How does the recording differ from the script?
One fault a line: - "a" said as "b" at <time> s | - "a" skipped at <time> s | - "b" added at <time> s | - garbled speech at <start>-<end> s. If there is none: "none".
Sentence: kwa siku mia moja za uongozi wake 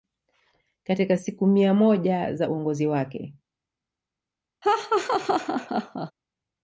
- "kwa" said as "katika" at 0.8 s